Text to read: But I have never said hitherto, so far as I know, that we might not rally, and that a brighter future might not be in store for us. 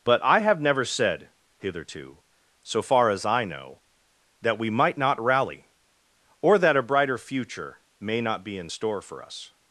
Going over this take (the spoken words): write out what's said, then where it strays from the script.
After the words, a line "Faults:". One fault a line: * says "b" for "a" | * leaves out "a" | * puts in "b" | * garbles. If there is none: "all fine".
But I have never said hitherto, so far as I know, that we might not rally, or that a brighter future may not be in store for us.
Faults:
* says "or" for "and"
* says "may" for "might"